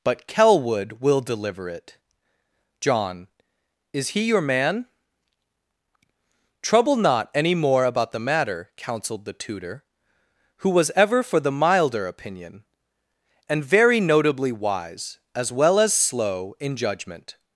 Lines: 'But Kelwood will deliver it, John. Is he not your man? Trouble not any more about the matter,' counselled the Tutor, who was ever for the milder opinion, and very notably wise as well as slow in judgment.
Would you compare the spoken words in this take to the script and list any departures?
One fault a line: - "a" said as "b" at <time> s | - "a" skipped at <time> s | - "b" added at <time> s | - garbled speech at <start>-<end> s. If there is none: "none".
- "not" skipped at 4.2 s